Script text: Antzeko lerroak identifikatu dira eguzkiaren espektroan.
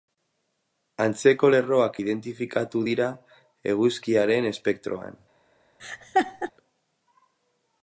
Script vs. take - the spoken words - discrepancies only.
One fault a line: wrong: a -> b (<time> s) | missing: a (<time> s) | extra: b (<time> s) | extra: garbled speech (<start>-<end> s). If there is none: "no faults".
no faults